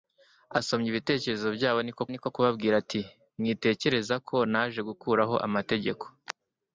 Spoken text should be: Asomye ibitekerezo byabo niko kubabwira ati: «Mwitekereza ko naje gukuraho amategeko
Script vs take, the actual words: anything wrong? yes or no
yes